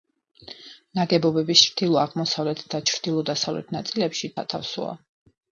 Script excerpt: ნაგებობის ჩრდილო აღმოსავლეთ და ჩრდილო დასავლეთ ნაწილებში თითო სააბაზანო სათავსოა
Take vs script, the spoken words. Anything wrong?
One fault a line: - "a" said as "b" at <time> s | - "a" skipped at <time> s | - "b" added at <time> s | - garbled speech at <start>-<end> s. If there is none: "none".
- "თითო სააბაზანო" skipped at 4.3 s